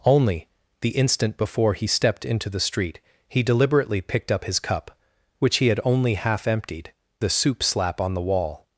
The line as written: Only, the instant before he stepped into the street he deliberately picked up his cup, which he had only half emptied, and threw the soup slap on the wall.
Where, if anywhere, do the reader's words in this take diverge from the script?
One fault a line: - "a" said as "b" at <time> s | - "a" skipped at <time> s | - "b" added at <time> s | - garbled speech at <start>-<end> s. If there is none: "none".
- "and threw" skipped at 6.9 s